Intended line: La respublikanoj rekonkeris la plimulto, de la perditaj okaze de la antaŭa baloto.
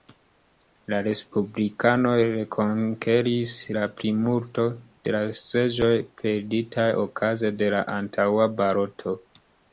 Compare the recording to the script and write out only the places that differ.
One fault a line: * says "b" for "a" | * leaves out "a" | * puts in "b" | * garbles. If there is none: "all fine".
* puts in "seĝoj"